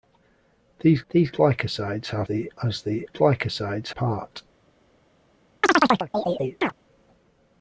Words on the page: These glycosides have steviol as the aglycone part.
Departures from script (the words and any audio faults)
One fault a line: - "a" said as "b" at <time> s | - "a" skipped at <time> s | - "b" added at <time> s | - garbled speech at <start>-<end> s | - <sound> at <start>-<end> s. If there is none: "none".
- "these" added at 1.1 s
- "steviol" said as "the" at 2.2 s
- "aglycone" said as "glycosides" at 3.1 s
- chirp at 5.6-6.7 s